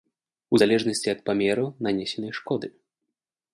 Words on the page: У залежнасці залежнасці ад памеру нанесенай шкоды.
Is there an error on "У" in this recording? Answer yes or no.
no